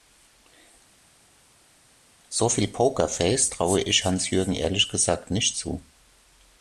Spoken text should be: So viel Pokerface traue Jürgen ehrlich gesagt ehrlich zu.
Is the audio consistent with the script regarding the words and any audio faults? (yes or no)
no